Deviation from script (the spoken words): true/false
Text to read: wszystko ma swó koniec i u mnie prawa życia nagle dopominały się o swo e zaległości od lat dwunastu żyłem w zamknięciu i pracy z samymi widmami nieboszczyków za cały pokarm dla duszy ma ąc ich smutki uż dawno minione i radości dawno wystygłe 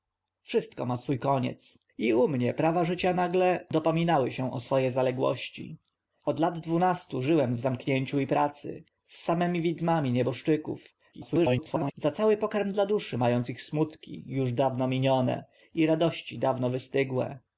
true